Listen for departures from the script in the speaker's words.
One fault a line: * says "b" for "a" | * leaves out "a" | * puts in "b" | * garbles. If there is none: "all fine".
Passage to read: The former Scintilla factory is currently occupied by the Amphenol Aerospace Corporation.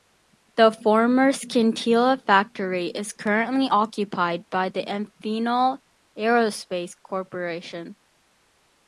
all fine